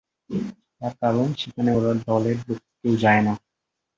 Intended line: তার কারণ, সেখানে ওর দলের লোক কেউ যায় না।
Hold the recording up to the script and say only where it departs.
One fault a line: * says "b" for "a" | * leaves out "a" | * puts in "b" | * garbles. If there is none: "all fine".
all fine